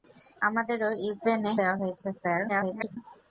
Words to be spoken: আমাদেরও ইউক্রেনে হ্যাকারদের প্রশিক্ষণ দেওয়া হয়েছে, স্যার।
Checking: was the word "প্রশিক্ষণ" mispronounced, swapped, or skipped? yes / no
yes